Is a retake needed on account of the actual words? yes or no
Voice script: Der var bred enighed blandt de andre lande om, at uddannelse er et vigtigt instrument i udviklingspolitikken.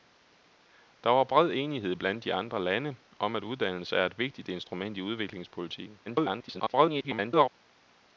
yes